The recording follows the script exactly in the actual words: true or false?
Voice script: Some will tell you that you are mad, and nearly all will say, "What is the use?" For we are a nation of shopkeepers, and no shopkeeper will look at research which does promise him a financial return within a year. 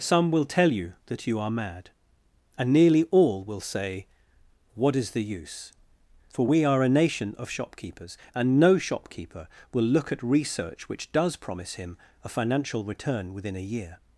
true